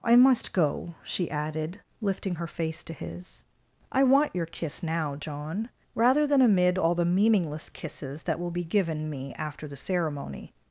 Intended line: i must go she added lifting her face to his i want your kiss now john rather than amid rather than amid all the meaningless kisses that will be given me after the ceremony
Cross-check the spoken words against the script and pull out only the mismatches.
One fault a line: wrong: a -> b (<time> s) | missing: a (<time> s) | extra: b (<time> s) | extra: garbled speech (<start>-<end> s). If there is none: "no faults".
missing: rather than amid (6.8 s)